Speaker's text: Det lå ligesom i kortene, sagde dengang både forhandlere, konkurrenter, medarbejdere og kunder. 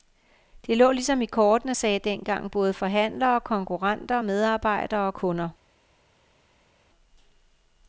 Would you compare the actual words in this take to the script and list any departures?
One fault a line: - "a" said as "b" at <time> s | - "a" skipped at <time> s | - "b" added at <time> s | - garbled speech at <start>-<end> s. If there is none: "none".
none